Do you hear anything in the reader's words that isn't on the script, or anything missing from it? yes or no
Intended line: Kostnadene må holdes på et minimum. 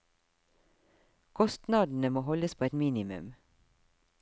no